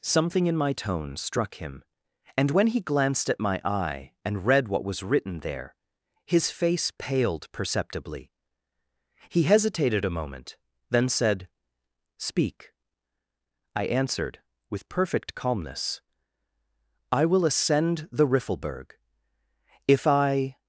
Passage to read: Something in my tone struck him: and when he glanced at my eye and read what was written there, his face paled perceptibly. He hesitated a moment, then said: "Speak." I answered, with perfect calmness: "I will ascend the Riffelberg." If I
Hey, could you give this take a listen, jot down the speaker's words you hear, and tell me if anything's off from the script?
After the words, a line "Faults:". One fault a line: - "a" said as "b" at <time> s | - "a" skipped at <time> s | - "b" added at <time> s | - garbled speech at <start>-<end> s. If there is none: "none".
Something in my tone struck him: and when he glanced at my eye and read what was written there, his face paled perceptibly. He hesitated a moment, then said: "Speak." I answered, with perfect calmness: "I will ascend the Riffelberg." If I
Faults:
none